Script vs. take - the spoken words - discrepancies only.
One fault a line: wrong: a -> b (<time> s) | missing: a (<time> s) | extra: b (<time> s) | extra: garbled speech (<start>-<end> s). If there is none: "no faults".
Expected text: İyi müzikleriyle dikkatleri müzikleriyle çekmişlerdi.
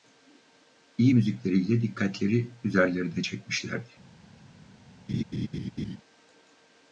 wrong: müzikleriyle -> üzerlerine (2.6 s)